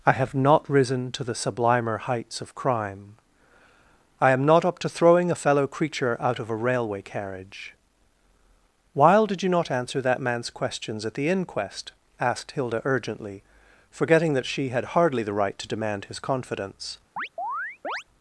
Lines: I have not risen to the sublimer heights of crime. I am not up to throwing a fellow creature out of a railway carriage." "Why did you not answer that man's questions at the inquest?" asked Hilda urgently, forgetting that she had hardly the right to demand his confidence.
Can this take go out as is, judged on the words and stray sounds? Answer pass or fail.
fail